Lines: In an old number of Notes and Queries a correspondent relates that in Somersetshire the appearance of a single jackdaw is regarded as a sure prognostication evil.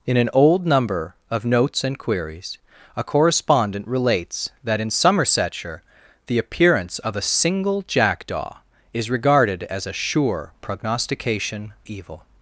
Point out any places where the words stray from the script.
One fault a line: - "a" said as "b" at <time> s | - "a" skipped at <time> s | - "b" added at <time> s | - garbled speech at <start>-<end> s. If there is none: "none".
none